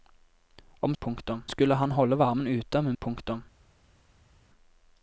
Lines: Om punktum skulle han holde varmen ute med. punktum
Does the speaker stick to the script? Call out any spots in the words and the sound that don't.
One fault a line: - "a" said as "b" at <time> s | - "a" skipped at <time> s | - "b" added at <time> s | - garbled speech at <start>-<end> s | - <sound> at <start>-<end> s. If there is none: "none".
none